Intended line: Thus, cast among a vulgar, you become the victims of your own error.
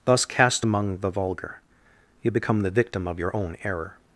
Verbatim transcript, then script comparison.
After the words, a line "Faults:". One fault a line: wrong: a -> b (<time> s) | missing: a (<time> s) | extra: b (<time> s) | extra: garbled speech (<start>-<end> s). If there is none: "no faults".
Thus, cast among the vulgar, you become the victim of your own error.
Faults:
wrong: a -> the (1.0 s)
wrong: victims -> victim (2.7 s)